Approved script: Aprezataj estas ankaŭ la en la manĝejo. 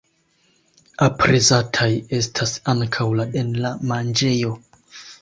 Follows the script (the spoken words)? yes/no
yes